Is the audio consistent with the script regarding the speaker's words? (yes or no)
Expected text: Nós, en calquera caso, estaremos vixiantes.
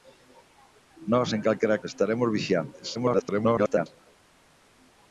no